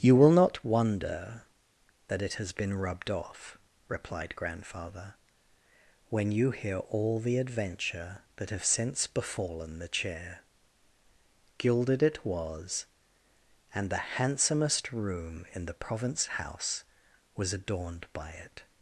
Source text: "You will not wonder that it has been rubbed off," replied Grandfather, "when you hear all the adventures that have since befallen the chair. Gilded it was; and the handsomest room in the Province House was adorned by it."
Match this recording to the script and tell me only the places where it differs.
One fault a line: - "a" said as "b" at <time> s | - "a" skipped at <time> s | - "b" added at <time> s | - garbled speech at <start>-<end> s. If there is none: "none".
- "adventures" said as "adventure" at 7.4 s